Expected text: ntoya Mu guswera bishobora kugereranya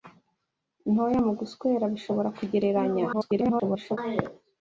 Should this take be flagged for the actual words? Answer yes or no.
yes